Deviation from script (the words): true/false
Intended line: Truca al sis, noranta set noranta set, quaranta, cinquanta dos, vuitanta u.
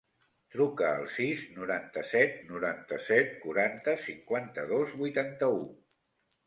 false